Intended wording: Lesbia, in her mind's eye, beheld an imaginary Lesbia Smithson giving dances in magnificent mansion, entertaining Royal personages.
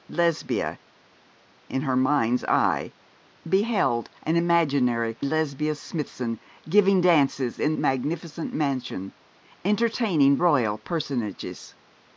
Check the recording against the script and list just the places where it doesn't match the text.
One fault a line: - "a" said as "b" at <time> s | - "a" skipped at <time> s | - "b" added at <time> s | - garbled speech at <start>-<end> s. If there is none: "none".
none